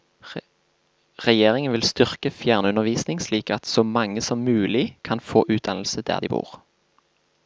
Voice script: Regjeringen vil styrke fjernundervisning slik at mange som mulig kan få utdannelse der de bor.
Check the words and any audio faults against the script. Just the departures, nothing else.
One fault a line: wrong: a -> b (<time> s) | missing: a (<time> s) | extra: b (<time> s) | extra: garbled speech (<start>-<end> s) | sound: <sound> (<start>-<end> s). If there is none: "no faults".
extra: så (3.7 s)